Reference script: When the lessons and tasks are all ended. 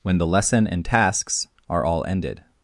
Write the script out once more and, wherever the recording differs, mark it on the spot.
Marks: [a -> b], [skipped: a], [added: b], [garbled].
When the [lessons -> lesson] and tasks are all ended.